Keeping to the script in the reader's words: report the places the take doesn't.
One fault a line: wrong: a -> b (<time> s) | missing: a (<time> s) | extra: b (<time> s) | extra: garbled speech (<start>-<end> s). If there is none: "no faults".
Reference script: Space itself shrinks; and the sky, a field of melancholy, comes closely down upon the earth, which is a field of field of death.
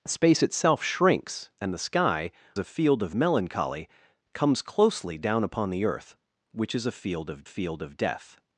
no faults